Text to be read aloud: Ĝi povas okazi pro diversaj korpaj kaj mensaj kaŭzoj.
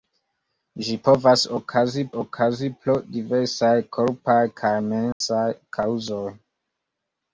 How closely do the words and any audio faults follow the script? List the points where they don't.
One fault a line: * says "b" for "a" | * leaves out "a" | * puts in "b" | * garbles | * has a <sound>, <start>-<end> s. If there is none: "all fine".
* puts in "okazi"
* has a dropout, 5.1-5.2 s